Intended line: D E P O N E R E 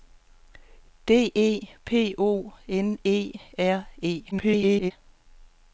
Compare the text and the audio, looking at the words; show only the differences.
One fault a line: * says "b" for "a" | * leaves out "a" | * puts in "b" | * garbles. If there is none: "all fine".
* garbles